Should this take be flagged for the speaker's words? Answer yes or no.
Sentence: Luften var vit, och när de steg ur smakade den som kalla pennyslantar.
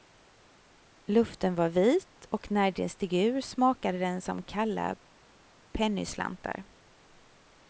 no